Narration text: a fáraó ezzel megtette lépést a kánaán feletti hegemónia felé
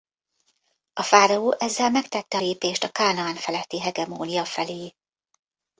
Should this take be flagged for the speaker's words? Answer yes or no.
no